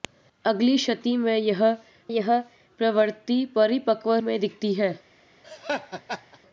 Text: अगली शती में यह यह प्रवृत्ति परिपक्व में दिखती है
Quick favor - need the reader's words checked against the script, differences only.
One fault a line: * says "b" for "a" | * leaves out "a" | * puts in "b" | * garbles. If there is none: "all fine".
all fine